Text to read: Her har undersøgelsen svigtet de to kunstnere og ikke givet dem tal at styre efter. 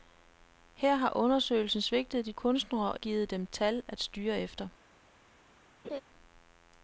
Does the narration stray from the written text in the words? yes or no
yes